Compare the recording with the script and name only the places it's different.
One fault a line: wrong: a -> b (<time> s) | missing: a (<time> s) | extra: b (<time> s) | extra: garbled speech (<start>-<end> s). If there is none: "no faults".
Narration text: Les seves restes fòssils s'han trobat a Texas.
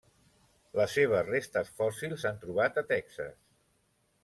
no faults